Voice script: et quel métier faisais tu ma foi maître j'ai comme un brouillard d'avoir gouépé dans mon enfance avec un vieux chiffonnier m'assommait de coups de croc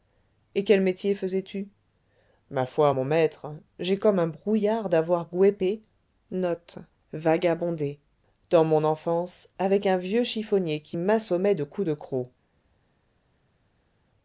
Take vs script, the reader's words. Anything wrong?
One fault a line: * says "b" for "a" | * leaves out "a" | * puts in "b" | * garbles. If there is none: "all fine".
* puts in "mon"
* puts in "qui"